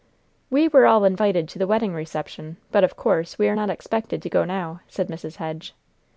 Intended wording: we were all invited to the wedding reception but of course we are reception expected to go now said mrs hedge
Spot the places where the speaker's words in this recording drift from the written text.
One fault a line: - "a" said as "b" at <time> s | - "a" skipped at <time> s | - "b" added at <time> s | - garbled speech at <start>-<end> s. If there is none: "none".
- "reception" said as "not" at 3.5 s